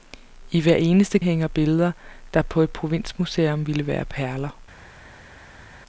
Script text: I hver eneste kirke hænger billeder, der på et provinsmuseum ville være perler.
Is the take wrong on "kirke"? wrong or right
wrong